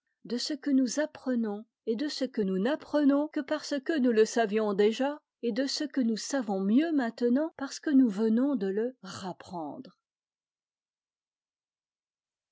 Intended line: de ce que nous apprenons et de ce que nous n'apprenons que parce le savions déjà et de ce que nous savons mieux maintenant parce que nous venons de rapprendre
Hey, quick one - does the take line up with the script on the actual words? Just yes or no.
no